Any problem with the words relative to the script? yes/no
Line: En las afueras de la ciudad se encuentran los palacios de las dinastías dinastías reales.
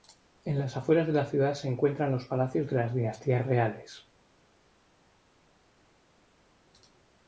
yes